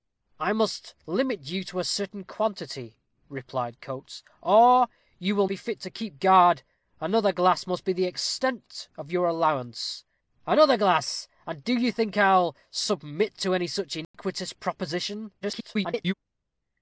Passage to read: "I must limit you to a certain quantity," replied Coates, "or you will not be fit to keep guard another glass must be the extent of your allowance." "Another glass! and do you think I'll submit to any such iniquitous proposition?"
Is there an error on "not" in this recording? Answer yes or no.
yes